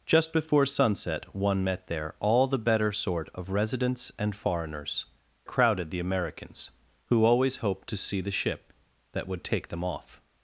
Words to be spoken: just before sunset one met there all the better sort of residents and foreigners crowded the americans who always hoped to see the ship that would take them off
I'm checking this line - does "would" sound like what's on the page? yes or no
yes